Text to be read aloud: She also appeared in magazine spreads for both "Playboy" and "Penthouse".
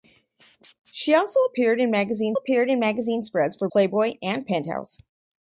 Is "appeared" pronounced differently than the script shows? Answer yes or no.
no